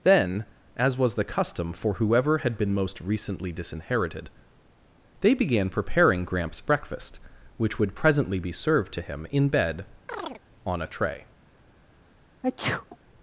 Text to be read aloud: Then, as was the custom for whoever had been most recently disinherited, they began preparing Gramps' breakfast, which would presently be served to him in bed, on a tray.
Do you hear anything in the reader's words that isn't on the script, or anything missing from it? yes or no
no